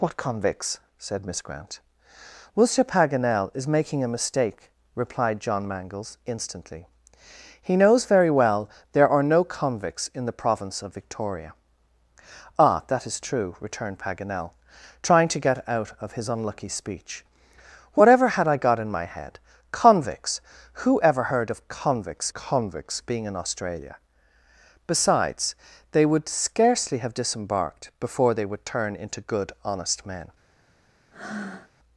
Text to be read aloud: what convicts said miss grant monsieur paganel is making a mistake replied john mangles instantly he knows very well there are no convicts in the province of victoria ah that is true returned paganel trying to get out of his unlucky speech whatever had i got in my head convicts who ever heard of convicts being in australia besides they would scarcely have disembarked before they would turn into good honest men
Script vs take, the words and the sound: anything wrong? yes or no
yes